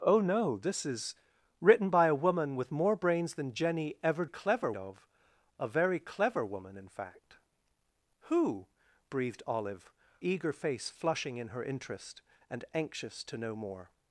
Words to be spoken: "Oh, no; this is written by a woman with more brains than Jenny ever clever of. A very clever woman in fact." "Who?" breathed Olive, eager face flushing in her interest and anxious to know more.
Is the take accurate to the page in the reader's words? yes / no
yes